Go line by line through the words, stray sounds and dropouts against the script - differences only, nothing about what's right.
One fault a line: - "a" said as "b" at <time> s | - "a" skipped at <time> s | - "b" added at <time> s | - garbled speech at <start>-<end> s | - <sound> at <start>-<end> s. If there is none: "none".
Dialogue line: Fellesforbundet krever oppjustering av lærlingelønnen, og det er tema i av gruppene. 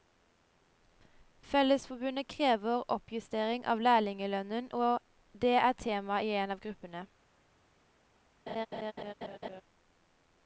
- "en" added at 6.4 s
- laugh at 8.5-9.6 s